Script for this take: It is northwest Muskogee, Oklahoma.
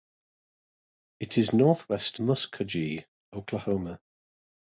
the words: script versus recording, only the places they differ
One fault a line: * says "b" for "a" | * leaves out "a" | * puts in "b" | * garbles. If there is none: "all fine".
all fine